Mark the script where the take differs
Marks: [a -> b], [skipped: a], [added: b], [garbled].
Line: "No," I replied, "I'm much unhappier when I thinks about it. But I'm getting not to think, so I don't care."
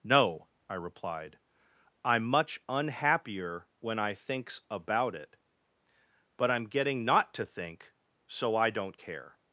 "No," I replied, "I'm much unhappier when I thinks about it. But I'm getting not to think, so I don't care."